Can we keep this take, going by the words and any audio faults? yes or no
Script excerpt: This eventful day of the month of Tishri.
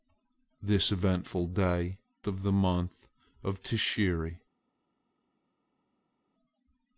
yes